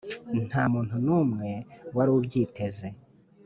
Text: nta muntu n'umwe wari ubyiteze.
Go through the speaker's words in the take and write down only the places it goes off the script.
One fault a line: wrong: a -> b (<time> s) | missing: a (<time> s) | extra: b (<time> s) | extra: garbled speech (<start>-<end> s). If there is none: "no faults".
no faults